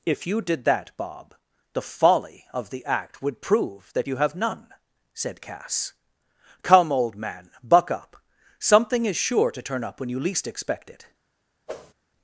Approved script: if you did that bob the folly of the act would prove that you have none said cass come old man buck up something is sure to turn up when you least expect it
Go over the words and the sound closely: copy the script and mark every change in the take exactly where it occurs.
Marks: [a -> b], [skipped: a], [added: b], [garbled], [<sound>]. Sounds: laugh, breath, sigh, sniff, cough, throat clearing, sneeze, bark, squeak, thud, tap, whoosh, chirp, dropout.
if you did that bob the folly of the act would prove that you have none said cass come old man buck up something is sure to turn up when you least expect it [whoosh]